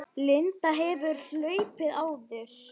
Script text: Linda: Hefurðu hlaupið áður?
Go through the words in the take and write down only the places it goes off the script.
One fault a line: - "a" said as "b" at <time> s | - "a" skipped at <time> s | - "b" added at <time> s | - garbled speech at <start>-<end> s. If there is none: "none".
none